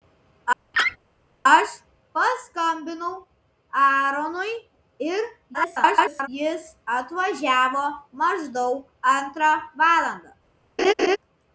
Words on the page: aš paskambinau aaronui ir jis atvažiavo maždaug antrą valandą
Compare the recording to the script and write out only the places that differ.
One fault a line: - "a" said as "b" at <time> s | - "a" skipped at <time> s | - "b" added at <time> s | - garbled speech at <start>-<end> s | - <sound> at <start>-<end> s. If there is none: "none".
- laugh at 0.7-1.0 s
- garbled speech at 5.5-6.3 s
- laugh at 10.8-11.2 s